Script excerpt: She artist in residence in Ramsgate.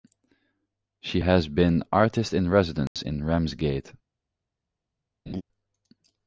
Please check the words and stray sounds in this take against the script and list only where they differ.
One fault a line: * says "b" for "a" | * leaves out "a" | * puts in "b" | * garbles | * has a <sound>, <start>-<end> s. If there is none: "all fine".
* puts in "has been"
* has a dropout, 2.9-3.0 s
* has a laugh, 5.3-5.4 s